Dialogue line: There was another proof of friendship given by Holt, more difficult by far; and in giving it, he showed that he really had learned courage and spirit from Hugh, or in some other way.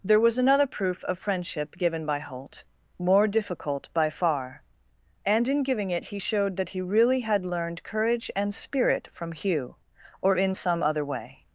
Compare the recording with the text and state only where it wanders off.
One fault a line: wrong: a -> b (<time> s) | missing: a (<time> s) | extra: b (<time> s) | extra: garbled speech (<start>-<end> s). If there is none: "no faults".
no faults